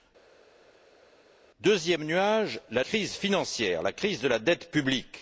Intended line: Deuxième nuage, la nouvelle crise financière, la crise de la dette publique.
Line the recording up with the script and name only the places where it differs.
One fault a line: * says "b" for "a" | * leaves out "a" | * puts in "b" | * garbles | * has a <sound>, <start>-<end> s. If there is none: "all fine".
* leaves out "nouvelle"